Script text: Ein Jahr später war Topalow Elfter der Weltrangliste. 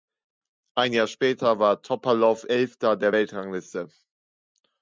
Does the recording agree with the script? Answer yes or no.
yes